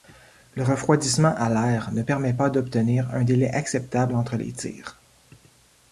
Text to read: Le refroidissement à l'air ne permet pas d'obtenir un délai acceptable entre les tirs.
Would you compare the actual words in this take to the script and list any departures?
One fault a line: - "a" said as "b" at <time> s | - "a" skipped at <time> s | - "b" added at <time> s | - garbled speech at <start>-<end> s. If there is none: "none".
none